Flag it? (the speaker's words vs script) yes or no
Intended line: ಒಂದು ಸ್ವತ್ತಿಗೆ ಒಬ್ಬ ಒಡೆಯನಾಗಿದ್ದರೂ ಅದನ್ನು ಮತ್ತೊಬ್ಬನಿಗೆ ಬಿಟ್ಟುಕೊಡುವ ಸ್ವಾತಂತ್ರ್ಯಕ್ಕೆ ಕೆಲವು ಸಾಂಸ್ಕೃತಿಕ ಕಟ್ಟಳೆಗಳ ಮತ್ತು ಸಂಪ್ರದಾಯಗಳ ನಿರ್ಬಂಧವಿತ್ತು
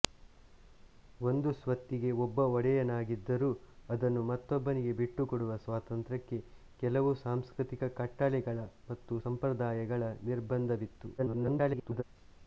yes